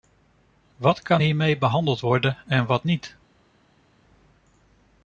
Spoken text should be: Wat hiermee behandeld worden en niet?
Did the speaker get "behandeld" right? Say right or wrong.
right